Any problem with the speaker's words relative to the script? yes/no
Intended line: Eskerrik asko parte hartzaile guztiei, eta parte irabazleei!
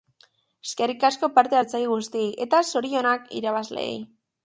yes